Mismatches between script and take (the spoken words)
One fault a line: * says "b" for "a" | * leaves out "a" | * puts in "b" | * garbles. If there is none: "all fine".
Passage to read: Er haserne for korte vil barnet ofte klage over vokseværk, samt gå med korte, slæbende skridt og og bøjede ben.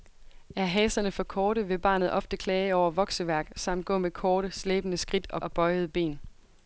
all fine